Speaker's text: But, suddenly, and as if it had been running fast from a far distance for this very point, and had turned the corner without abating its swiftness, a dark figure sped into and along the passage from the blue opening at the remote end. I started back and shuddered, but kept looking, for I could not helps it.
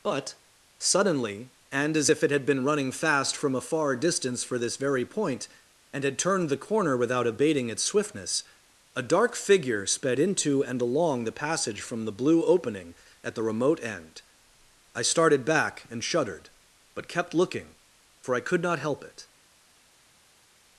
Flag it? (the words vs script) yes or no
yes